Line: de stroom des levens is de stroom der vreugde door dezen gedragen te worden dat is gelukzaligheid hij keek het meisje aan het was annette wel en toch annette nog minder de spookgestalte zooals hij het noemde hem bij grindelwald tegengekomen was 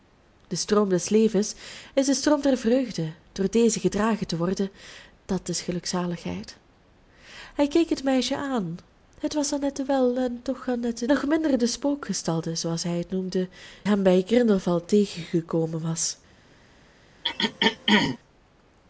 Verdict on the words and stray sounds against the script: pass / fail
fail